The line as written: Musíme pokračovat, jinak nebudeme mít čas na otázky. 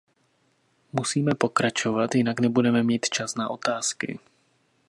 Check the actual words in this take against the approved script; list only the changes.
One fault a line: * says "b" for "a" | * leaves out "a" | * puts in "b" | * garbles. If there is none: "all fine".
all fine